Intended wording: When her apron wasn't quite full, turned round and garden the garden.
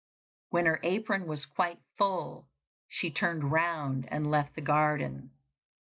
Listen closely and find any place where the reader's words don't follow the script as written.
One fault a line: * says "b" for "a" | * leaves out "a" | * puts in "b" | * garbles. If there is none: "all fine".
* says "was" for "wasn't"
* puts in "she"
* says "left" for "garden"